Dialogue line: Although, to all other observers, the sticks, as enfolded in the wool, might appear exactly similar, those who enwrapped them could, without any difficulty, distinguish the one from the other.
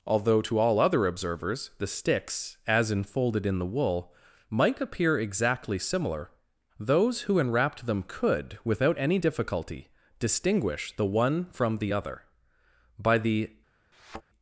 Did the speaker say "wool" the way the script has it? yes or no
yes